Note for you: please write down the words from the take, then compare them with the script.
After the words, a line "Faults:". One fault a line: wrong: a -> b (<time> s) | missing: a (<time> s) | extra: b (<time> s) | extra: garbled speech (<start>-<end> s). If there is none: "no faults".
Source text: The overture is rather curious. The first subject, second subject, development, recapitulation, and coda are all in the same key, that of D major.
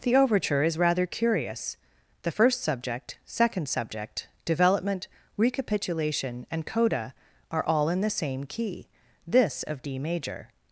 The overture is rather curious. The first subject, second subject, development, recapitulation, and coda are all in the same key, this of D major.
Faults:
wrong: that -> this (9.3 s)